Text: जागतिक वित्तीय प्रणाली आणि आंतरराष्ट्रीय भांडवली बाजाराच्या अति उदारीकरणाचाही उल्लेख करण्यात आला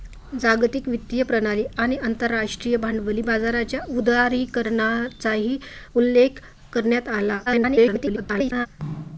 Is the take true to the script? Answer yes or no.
no